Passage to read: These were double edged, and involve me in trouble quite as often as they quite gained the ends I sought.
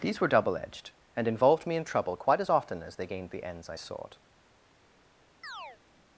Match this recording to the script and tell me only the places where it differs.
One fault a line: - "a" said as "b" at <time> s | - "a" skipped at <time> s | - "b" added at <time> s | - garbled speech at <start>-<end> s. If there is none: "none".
- "involve" said as "involved" at 1.3 s
- "quite" skipped at 3.1 s